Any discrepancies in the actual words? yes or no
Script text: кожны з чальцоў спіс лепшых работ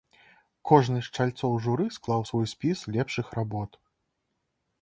yes